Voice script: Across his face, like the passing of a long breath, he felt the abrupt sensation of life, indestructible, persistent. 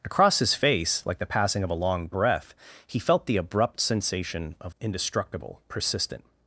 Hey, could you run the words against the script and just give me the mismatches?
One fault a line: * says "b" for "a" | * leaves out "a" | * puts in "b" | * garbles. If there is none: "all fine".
* leaves out "life"